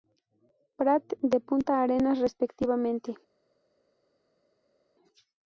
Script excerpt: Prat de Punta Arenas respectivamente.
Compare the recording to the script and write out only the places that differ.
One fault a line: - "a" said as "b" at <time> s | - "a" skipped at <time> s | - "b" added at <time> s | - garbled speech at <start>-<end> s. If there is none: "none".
none